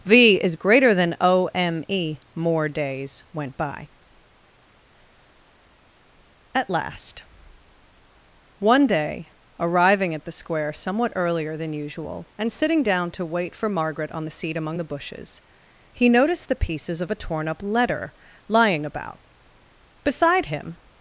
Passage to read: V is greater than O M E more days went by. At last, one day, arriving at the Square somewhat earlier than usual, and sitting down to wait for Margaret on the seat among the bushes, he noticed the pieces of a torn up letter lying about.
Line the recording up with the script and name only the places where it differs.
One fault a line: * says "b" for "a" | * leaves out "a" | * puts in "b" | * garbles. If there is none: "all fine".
* puts in "Beside him"